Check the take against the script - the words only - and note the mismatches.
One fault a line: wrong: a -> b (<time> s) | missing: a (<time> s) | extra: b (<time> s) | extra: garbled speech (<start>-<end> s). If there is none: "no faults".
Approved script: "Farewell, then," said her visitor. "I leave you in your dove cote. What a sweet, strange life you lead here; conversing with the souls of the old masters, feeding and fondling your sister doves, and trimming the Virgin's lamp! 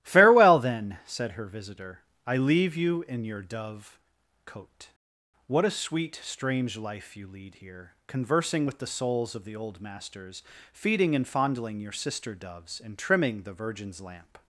no faults